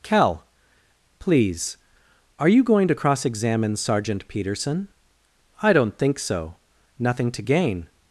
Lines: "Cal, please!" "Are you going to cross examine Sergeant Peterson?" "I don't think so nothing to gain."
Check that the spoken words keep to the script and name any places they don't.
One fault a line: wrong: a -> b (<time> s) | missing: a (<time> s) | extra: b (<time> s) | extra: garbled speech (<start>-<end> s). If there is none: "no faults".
no faults